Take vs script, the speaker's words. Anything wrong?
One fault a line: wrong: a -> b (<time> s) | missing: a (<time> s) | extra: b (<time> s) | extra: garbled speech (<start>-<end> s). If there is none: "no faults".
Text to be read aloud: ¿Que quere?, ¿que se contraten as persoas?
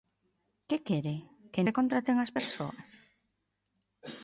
no faults